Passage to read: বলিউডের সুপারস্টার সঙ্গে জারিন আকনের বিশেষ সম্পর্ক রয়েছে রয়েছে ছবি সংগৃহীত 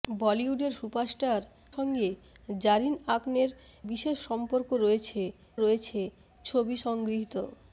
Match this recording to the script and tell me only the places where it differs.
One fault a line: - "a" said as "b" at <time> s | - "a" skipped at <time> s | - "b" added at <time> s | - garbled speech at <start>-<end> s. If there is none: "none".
none